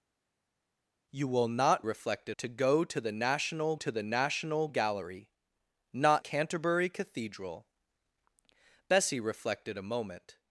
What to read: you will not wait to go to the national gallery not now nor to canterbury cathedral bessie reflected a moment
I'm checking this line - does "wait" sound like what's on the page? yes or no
no